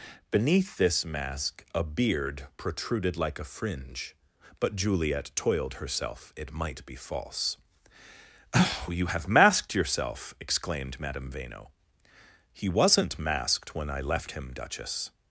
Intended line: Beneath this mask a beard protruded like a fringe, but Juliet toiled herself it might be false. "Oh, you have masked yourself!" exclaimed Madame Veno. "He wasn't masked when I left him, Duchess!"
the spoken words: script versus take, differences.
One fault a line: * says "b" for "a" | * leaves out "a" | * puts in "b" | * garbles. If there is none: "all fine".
all fine